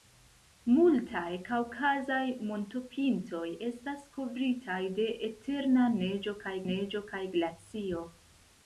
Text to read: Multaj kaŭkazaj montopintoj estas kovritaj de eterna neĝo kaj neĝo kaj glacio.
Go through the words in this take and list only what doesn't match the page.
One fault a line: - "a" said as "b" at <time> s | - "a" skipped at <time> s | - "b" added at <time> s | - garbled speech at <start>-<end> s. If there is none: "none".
none